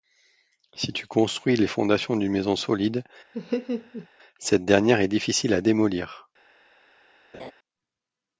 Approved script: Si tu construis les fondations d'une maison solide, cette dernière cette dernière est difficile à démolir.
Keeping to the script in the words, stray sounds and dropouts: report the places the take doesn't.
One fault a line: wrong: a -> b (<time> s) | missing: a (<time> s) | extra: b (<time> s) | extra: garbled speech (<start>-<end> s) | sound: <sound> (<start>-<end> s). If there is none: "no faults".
sound: laugh (3.3-4.1 s)
missing: cette dernière (5.0 s)
sound: laugh (7.3-7.5 s)